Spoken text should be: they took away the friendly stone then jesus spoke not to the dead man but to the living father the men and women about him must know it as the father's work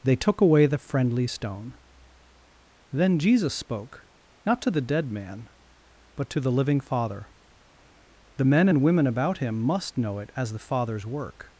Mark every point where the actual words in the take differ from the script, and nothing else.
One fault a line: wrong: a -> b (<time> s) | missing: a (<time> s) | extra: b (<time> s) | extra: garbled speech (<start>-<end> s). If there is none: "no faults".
no faults